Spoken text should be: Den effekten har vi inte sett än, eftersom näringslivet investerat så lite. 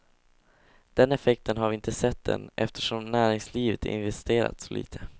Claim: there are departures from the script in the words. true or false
false